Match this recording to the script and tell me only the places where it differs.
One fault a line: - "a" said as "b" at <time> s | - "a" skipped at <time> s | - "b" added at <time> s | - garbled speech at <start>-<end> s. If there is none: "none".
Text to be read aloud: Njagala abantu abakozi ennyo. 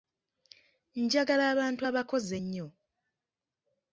none